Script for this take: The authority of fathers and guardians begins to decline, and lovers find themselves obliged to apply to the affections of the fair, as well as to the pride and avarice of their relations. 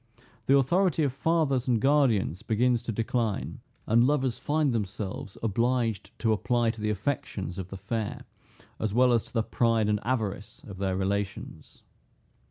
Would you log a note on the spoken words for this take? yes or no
no